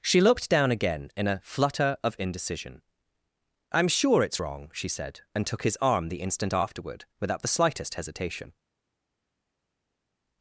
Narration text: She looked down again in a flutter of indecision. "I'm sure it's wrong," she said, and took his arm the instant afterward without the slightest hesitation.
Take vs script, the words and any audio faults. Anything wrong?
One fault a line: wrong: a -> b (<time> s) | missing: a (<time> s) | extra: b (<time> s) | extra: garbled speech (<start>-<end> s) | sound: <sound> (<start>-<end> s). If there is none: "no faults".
no faults